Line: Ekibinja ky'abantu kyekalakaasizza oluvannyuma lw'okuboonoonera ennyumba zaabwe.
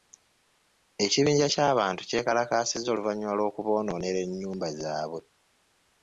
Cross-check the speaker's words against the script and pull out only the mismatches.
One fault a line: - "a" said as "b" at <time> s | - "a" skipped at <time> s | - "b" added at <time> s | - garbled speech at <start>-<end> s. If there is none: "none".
none